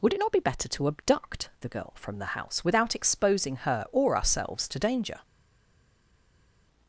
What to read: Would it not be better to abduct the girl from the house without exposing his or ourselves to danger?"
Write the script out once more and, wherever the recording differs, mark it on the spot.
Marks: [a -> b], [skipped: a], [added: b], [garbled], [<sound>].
Would it not be better to abduct the girl from the house without exposing [his -> her] or ourselves to danger?"